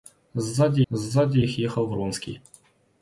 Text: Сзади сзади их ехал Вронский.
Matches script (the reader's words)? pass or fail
pass